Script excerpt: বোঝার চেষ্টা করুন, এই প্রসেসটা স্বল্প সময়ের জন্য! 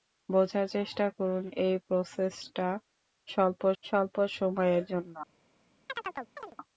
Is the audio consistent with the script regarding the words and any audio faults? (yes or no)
no